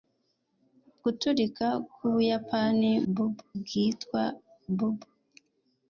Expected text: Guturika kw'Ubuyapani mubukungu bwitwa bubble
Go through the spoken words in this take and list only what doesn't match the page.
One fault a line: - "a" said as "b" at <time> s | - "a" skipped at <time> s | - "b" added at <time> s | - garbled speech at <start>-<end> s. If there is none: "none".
- "mubukungu" said as "bubble" at 3.1 s